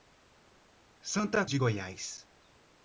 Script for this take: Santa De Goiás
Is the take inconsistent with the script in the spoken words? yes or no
no